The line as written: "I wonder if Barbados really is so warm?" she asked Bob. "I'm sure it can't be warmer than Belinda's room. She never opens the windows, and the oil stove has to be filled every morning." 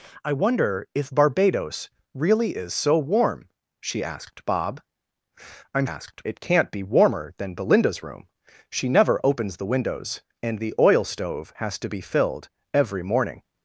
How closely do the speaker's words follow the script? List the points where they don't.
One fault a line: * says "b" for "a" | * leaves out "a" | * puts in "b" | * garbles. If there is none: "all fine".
* says "asked" for "sure"